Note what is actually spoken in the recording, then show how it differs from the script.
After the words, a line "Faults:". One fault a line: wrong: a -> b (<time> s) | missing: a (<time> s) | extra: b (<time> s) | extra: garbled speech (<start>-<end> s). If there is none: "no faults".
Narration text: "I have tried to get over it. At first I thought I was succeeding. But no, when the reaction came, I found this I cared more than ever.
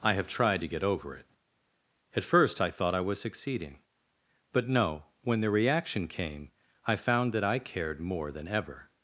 "I have tried to get over it. At first I thought I was succeeding. But no, when the reaction came, I found that I cared more than ever.
Faults:
wrong: this -> that (7.3 s)